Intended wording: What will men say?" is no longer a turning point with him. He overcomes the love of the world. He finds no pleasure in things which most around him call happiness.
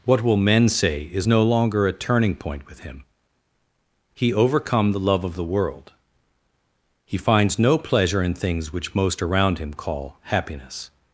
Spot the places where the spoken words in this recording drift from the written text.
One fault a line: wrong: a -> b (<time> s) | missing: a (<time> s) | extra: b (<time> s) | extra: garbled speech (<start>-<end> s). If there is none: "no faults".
wrong: overcomes -> overcome (4.3 s)